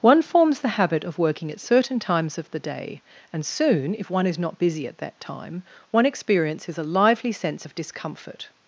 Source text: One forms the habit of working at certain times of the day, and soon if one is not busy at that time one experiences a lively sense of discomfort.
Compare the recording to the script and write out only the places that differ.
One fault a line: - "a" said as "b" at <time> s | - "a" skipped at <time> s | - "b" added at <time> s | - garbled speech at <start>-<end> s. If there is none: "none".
none